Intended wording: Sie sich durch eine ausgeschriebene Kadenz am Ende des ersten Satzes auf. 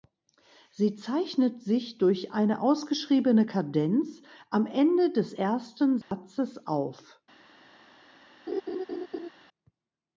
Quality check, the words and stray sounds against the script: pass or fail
fail